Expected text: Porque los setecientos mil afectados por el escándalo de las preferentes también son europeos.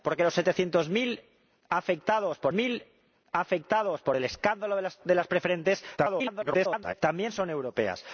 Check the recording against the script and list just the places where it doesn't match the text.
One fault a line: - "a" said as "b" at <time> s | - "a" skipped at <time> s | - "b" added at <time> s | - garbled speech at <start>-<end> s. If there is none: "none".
- "mil afectados por" added at 2.5 s
- garbled speech at 6.0-6.9 s